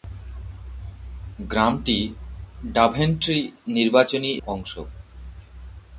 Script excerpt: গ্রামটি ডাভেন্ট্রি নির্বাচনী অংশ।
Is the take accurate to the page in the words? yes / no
yes